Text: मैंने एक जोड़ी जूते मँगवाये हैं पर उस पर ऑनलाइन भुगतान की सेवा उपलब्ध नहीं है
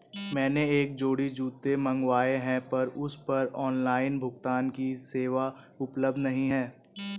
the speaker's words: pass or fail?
pass